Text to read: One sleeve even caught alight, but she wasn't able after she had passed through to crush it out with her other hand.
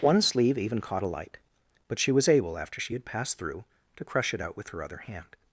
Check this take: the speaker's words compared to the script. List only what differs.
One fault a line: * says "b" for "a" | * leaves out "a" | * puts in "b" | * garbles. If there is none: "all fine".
* says "was" for "wasn't"